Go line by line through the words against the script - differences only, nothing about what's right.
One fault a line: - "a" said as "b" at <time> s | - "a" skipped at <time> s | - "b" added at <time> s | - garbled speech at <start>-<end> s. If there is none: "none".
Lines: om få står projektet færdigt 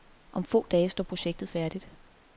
- "dage" added at 0.7 s